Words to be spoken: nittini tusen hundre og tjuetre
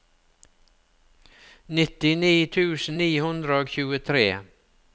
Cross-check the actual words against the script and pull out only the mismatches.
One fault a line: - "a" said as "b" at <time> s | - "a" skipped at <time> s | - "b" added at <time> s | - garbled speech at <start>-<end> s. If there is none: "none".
- "ni" added at 3.0 s